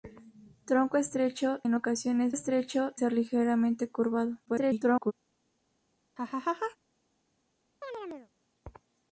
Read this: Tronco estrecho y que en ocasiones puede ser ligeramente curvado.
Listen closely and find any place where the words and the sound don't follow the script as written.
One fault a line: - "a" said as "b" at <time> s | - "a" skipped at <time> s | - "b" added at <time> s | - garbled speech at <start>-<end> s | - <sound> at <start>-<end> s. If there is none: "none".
- "y que" skipped at 1.6 s
- "puede" said as "estrecho" at 2.3 s
- garbled speech at 4.5-5.1 s
- laugh at 6.2-6.8 s
- chirp at 7.8-8.3 s